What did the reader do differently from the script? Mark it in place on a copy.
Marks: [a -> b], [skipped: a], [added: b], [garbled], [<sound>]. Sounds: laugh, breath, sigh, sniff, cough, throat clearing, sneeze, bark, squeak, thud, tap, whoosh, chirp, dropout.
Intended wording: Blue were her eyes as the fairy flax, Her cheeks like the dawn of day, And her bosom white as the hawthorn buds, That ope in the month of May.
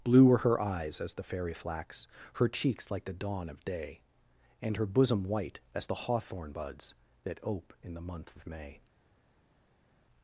Blue were her eyes as the fairy flax, Her cheeks like the dawn of day, And her bosom white as the hawthorn buds, That ope in the month of May.